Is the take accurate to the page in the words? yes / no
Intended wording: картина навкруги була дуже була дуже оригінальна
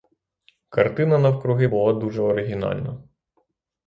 no